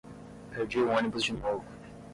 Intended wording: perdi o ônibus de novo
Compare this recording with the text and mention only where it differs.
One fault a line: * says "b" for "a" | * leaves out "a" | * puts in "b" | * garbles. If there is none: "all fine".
all fine